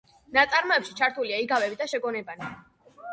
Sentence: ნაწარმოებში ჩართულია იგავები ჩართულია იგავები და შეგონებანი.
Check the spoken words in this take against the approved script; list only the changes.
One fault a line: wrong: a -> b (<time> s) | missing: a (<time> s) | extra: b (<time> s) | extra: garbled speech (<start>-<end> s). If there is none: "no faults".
missing: ჩართულია იგავები (1.8 s)